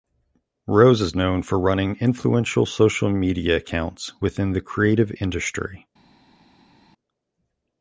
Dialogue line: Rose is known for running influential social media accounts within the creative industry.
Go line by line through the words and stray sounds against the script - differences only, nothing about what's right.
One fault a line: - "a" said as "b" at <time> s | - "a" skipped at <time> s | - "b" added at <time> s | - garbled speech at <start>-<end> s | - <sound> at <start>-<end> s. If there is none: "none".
none